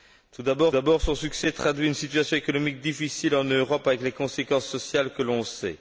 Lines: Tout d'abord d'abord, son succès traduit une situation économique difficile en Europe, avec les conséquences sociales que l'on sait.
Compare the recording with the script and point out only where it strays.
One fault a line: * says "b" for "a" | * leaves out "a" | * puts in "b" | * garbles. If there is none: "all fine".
all fine